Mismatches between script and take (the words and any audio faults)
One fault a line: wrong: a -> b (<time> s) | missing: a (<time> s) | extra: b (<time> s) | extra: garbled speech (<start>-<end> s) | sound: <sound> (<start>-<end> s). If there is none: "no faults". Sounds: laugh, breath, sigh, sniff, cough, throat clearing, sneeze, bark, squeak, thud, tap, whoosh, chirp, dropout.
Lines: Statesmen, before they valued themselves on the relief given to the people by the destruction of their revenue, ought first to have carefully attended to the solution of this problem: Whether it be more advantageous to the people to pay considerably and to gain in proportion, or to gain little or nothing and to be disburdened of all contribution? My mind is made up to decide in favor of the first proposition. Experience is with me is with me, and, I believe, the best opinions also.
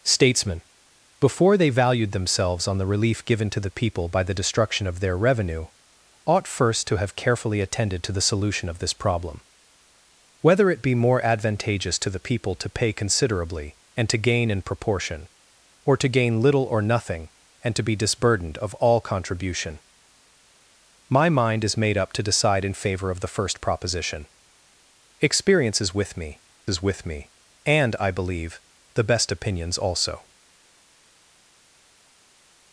no faults